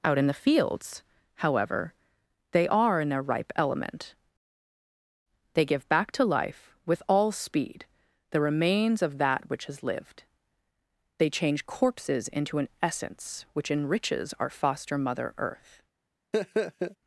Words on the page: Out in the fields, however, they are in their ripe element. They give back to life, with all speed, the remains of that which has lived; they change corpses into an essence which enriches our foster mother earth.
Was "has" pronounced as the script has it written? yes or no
yes